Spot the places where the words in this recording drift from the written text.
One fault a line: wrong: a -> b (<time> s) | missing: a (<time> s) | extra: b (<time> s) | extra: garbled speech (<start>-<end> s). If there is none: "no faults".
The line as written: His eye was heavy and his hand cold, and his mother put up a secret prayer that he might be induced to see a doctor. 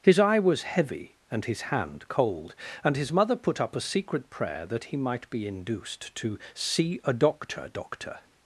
extra: doctor (7.7 s)